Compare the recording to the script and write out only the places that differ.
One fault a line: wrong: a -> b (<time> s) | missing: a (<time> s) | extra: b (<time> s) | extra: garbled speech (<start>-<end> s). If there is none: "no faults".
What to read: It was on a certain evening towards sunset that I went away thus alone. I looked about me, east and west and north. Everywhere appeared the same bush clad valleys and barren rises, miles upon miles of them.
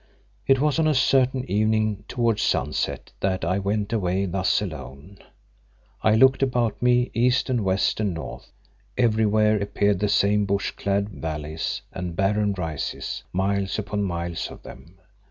no faults